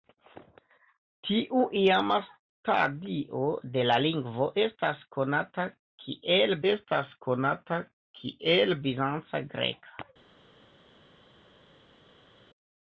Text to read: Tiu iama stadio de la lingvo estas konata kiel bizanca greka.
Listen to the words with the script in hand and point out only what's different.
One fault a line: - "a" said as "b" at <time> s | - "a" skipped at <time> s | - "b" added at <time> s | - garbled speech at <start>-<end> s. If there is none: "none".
- "estas konata kiel" added at 6.7 s